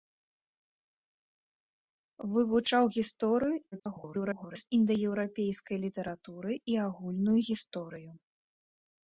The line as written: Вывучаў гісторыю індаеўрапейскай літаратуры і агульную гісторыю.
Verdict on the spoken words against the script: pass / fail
fail